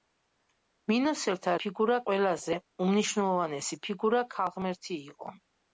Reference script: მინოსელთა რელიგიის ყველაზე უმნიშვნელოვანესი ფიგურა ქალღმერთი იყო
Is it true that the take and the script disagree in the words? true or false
true